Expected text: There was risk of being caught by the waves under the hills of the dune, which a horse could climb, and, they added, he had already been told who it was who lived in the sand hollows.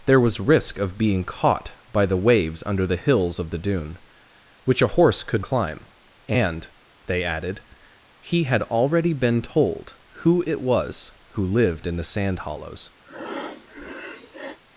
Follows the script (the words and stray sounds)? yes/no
no